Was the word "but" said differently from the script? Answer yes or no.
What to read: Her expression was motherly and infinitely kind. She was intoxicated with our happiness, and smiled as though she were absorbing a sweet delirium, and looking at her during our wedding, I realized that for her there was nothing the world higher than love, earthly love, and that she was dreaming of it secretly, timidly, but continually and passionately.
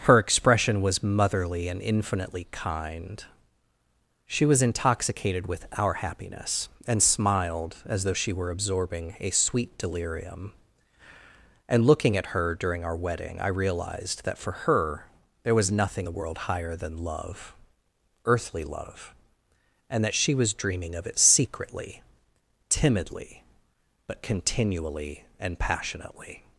no